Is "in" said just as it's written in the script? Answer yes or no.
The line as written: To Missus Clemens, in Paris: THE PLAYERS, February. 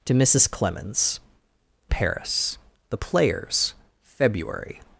no